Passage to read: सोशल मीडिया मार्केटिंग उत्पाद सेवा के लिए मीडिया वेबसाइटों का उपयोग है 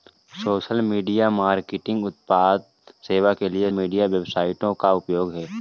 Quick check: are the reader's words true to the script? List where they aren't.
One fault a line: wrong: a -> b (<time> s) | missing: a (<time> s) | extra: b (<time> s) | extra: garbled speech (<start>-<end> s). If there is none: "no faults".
no faults